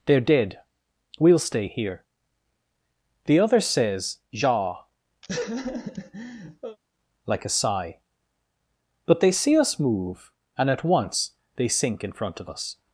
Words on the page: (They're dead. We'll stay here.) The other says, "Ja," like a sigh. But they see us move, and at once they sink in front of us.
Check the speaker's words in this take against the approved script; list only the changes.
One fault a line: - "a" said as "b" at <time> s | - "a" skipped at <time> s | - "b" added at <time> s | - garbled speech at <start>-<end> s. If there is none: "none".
none